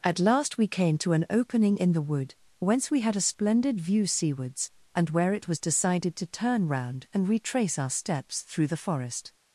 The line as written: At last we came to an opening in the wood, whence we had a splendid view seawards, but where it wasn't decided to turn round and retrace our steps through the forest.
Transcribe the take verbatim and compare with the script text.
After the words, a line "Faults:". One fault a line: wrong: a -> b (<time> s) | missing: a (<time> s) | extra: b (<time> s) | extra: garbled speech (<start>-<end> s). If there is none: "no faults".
At last we came to an opening in the wood, whence we had a splendid view seawards, and where it was decided to turn round and retrace our steps through the forest.
Faults:
wrong: but -> and (4.9 s)
wrong: wasn't -> was (5.5 s)